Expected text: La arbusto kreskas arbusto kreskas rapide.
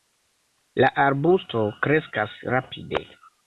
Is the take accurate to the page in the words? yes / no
no